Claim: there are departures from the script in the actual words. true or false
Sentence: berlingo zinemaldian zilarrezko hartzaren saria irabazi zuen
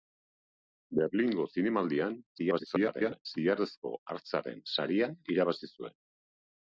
true